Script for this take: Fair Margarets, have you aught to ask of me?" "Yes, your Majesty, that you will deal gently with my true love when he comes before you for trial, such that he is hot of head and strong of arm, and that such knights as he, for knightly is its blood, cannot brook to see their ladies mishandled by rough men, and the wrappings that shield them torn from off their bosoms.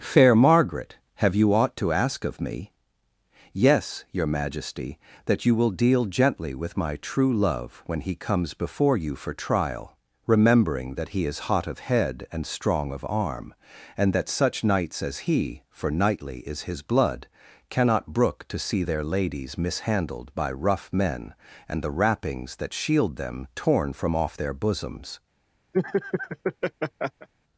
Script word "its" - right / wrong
wrong